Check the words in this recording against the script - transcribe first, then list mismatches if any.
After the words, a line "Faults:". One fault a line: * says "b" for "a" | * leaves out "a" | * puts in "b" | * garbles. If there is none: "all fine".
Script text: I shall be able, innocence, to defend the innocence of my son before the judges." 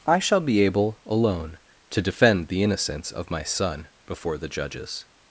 I shall be able, alone, to defend the innocence of my son before the judges."
Faults:
* says "alone" for "innocence"